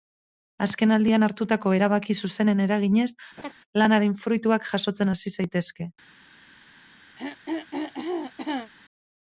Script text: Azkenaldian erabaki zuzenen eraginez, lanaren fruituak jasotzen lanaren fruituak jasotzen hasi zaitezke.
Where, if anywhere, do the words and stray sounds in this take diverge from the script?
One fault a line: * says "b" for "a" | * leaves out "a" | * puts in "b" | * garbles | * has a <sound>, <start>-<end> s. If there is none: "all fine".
* puts in "hartutako"
* has a laugh, 3.4-3.5 s
* leaves out "lanaren fruituak jasotzen"
* has a throat clearing, 7.2-8.7 s